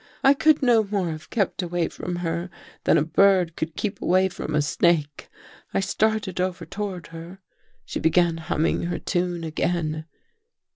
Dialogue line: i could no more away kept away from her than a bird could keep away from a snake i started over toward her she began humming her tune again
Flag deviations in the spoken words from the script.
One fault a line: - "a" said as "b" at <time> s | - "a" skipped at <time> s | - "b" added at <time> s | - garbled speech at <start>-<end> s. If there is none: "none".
- "away" said as "have" at 1.1 s